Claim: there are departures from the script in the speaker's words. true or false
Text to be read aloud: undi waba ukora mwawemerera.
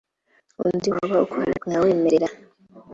false